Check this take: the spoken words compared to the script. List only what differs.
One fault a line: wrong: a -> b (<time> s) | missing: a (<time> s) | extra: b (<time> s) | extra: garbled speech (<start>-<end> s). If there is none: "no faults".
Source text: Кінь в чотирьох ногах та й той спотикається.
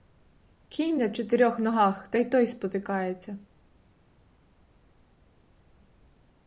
wrong: в -> на (1.0 s)